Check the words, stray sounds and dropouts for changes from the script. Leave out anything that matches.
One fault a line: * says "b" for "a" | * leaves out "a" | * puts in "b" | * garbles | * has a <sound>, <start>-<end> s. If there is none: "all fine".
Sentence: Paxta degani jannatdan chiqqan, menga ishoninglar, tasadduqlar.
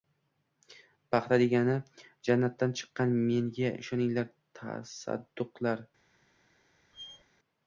* has a squeak, 6.9-7.2 s